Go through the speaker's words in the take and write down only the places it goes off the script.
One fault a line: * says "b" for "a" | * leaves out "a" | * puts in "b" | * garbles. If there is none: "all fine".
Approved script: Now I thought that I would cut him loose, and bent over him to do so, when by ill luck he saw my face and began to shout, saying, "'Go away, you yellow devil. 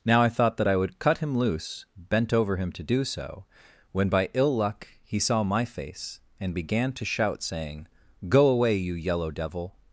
* leaves out "and"